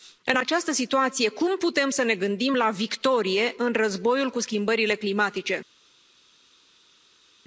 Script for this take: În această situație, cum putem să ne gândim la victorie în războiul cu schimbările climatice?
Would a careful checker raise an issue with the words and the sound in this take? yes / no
no